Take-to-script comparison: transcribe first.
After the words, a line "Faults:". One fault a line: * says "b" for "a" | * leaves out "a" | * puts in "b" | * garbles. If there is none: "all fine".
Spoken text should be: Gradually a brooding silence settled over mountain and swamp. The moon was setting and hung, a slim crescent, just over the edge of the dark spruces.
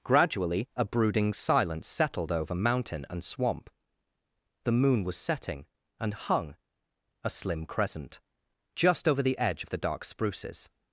Gradually a brooding silence settled over mountain and swamp. The moon was setting and hung, a slim crescent, just over the edge of the dark spruces.
Faults:
all fine